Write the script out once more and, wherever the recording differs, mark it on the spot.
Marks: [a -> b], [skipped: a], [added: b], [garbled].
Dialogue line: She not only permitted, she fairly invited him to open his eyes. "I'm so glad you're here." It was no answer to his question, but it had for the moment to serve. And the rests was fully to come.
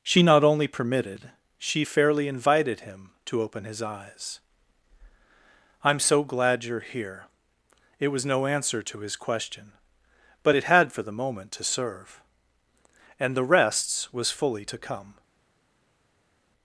She not only permitted, she fairly invited him to open his eyes. "I'm so glad you're here." It was no answer to his question, but it had for the moment to serve. And the rests was fully to come.